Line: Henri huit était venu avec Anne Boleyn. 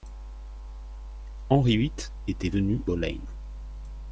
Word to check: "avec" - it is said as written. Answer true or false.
false